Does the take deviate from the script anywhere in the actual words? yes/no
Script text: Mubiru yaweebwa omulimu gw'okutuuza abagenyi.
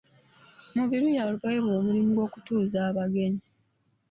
no